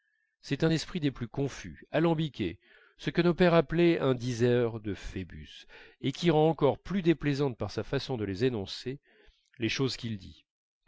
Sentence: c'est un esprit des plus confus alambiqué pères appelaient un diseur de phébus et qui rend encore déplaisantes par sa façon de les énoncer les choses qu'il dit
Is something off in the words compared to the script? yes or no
yes